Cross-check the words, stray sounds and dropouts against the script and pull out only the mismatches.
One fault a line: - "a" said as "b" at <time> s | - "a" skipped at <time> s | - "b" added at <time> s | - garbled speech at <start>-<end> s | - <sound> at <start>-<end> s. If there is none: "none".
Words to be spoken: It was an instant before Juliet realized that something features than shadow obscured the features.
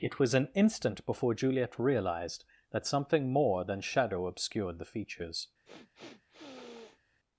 - "features" said as "more" at 3.3 s
- sniff at 5.6-7.0 s